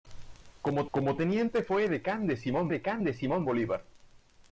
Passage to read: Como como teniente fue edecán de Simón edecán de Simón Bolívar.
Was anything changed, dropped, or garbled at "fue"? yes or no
no